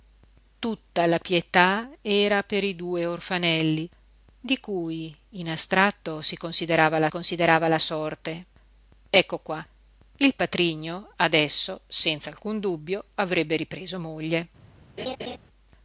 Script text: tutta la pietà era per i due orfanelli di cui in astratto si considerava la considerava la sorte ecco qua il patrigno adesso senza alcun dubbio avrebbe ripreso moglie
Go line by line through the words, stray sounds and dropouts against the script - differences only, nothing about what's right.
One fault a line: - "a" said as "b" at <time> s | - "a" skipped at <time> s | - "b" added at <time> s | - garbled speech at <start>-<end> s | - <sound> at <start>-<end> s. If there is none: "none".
- laugh at 15.0-15.4 s